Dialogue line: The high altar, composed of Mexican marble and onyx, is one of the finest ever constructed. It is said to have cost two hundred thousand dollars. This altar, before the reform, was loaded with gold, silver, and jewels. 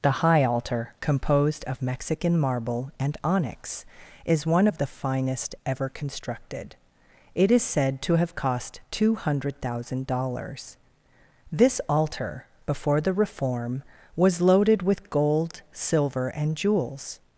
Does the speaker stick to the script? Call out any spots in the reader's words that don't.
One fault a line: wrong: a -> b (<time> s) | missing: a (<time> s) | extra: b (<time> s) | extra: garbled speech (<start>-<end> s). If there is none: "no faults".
no faults